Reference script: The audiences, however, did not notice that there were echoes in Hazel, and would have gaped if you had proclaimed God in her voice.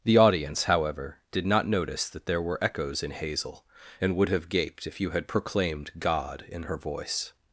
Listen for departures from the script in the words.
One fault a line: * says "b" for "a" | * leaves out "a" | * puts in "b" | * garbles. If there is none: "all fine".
* says "audience" for "audiences"